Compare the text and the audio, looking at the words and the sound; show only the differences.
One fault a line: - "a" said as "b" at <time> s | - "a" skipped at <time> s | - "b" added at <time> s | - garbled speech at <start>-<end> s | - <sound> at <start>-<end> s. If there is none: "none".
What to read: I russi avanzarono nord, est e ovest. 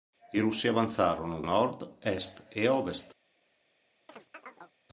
- chirp at 4.1-4.7 s